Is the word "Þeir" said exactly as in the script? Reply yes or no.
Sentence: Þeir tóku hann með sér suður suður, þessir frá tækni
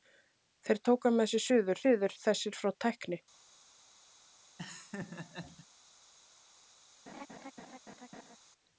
yes